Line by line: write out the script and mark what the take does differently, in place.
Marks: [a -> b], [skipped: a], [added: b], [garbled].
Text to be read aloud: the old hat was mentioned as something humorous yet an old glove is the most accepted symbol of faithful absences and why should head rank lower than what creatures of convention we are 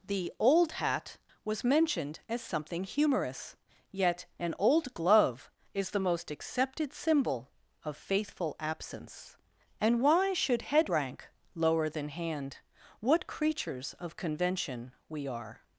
the old hat was mentioned as something humorous yet an old glove is the most accepted symbol of faithful [absences -> absence] and why should head rank lower than [added: hand] what creatures of convention we are